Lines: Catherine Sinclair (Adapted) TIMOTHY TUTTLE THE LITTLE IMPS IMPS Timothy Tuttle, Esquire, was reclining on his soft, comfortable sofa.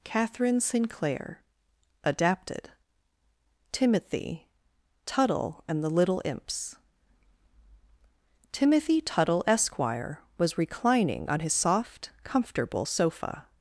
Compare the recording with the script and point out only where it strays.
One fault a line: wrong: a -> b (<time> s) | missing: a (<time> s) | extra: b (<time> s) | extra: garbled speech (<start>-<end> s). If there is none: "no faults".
extra: AND (5.7 s)
missing: IMPS (6.8 s)